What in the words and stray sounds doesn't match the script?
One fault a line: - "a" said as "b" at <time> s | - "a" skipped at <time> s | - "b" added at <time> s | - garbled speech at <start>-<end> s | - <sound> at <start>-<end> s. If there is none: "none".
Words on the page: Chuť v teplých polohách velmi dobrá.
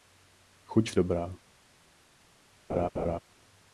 - "teplých polohách velmi" skipped at 0.9 s
- laugh at 2.7-3.2 s